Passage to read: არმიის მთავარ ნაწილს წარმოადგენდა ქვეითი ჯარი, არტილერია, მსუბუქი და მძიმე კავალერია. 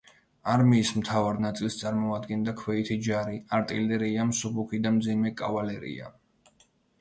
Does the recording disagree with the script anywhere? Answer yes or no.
no